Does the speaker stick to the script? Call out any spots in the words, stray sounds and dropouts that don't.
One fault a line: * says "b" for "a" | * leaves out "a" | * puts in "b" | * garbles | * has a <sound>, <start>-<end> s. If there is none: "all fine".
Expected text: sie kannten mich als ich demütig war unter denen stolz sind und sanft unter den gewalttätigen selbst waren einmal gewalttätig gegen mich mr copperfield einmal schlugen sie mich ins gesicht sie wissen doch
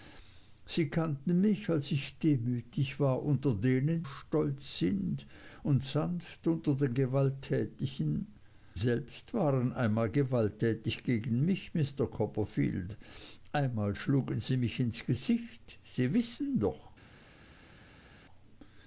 all fine